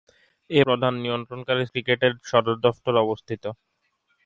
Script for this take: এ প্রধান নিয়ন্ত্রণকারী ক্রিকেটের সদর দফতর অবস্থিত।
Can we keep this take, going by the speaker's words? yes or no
yes